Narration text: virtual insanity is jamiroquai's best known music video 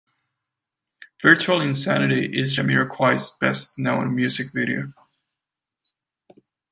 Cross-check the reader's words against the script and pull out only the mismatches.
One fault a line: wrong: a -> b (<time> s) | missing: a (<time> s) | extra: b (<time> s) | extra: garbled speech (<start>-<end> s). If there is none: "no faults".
no faults